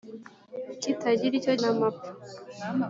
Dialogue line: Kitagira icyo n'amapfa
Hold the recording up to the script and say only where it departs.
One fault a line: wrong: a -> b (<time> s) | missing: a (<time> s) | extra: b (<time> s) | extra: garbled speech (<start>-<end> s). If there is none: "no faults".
no faults